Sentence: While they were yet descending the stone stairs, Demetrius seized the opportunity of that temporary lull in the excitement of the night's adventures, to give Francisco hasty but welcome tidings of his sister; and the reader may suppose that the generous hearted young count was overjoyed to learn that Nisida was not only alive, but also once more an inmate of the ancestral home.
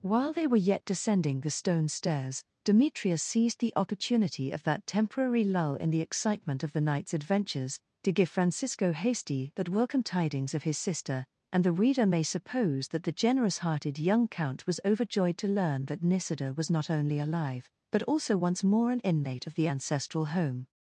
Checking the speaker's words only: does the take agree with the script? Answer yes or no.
yes